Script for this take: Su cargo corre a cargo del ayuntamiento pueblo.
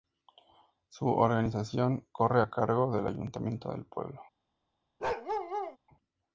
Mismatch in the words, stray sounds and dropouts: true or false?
true